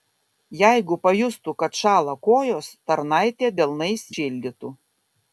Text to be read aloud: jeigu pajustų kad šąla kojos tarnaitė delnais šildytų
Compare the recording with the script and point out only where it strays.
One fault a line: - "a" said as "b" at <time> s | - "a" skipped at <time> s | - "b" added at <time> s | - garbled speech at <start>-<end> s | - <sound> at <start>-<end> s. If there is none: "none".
none